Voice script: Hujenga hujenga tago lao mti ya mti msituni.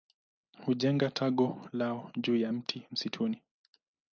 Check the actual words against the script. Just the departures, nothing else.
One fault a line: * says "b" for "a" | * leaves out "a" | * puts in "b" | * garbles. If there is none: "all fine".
* leaves out "hujenga"
* says "juu" for "mti"